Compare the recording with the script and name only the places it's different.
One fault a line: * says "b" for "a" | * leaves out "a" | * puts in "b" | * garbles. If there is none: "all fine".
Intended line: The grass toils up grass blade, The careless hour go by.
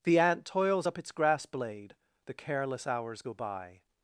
* says "ant" for "grass"
* puts in "its"
* says "hours" for "hour"